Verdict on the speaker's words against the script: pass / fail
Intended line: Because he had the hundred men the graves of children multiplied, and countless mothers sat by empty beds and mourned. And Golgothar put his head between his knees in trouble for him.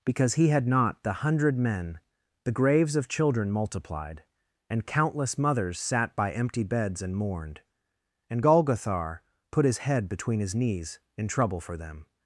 fail